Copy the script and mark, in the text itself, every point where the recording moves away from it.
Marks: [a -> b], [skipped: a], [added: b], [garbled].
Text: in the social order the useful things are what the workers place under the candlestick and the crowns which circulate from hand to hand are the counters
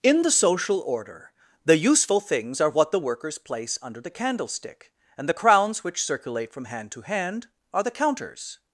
in the social order the useful things are what the workers place under the candlestick and the crowns which circulate from hand to hand are the counters